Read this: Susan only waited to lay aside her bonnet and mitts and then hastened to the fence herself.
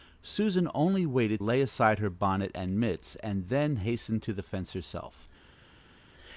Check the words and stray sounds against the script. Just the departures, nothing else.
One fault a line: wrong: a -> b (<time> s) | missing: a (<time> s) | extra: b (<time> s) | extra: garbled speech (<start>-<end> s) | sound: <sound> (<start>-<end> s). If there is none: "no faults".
missing: to (1.4 s)